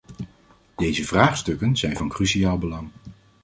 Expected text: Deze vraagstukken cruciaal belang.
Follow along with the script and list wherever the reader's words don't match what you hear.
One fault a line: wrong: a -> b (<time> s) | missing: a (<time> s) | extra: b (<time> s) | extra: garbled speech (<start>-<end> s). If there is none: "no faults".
extra: zijn van (1.8 s)